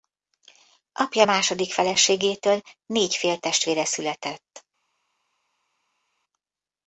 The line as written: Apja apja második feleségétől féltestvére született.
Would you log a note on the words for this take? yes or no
yes